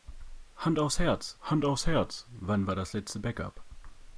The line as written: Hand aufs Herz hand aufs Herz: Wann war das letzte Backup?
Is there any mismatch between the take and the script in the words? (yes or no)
no